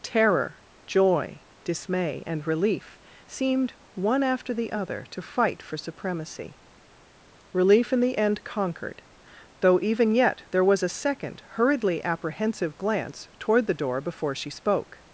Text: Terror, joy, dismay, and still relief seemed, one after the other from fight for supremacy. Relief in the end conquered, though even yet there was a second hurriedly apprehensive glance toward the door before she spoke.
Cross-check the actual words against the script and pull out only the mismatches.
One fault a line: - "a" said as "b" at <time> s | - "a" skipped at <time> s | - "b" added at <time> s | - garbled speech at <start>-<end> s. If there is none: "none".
- "still" skipped at 2.5 s
- "from" said as "to" at 5.1 s